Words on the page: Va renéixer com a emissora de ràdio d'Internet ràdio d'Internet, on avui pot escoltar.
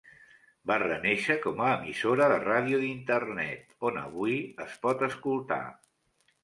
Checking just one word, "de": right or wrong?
right